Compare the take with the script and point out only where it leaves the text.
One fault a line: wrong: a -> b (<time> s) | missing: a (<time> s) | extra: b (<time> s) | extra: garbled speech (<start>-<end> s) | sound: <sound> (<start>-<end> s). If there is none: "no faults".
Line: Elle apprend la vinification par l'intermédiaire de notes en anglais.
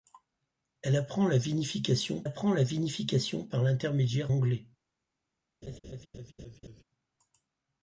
wrong: par l'intermédiaire de notes en -> apprend la vinification par l'intermédiaire (2.2 s)
sound: laugh (5.6-6.8 s)